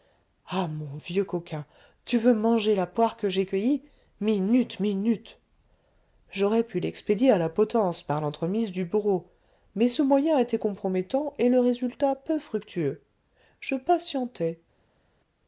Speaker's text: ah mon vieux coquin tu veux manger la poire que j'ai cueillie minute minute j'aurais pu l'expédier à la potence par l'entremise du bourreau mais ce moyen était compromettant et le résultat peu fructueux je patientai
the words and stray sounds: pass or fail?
pass